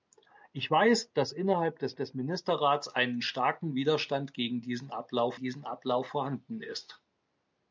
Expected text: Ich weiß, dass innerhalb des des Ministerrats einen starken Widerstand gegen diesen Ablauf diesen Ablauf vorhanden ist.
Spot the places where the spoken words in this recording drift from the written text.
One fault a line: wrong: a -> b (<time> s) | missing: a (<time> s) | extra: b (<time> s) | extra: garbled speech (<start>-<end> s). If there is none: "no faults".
no faults